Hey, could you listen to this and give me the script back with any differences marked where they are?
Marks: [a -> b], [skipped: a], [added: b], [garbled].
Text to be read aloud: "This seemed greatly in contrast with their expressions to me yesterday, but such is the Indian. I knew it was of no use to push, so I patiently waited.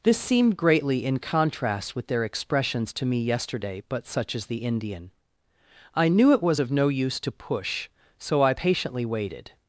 "This seemed greatly in contrast with their expressions to me yesterday, but such is the Indian. I knew it was of no use to push, so I patiently waited.